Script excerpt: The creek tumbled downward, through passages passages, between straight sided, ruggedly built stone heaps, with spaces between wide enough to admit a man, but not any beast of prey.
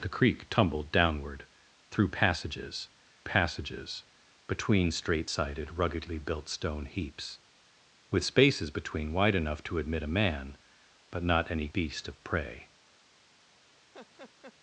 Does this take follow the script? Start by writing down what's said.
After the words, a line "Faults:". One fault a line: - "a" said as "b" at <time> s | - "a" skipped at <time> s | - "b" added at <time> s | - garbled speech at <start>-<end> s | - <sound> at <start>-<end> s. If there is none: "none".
The creek tumbled downward, through passages passages, between straight sided, ruggedly built stone heaps, with spaces between wide enough to admit a man, but not any beast of prey.
Faults:
- laugh at 13.9-14.5 s